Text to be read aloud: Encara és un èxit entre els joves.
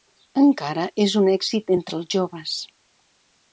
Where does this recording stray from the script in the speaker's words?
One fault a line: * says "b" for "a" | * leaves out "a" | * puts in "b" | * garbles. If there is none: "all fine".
all fine